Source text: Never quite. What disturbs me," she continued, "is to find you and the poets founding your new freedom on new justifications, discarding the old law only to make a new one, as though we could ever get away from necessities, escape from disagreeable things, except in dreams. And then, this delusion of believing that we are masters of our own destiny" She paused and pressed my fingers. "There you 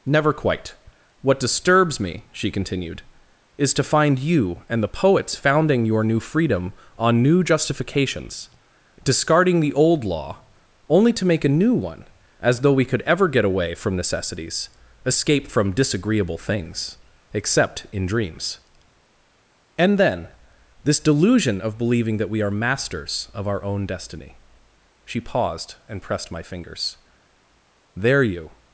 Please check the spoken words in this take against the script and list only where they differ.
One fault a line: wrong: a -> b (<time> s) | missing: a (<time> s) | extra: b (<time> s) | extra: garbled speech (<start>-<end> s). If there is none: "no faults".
no faults